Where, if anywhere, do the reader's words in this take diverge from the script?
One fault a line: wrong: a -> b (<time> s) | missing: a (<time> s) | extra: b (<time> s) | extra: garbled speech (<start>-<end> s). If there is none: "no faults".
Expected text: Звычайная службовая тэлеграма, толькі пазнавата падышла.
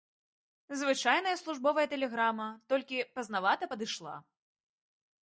no faults